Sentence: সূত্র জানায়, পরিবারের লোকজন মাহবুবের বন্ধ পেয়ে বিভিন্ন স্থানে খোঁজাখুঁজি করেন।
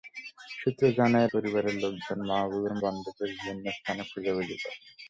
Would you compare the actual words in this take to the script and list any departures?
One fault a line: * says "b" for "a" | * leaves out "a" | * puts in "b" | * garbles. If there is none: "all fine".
all fine